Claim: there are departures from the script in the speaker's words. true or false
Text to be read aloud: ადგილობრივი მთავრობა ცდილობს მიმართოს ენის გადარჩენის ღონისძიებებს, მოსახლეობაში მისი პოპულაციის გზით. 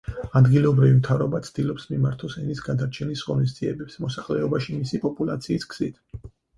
false